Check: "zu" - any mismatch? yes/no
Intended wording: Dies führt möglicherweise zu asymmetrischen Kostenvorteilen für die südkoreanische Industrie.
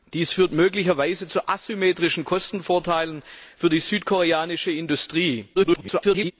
no